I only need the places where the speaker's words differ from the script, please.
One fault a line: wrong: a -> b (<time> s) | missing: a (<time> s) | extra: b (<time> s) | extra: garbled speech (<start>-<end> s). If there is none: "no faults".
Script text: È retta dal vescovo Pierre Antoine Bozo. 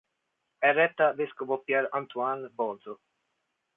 missing: dal (1.1 s)